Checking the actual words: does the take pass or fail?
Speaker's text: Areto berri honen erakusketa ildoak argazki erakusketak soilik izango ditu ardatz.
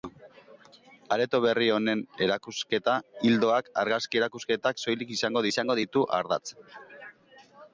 fail